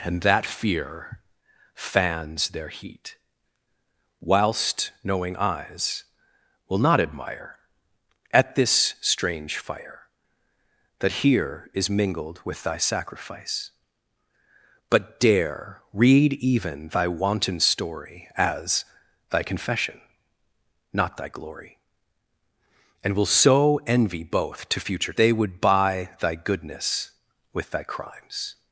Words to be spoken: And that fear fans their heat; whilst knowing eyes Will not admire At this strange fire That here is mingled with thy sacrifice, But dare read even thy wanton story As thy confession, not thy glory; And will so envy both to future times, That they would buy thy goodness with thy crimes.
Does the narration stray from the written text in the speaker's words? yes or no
yes